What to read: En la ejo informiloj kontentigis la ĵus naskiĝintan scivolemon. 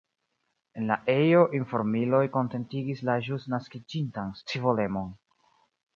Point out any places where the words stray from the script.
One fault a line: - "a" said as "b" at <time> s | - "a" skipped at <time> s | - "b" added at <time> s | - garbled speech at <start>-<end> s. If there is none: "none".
none